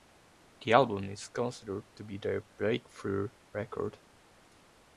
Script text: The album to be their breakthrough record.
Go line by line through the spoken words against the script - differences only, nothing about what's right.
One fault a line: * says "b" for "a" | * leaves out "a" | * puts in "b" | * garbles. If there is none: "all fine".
* puts in "is considered"